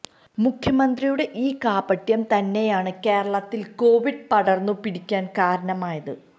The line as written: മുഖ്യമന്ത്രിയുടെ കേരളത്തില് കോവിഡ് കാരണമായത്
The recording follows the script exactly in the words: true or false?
false